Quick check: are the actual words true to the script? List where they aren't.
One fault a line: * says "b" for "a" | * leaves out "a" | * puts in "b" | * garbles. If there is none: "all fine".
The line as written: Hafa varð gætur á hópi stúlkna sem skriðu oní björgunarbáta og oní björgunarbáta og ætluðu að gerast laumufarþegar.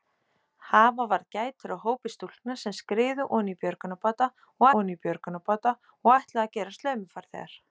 all fine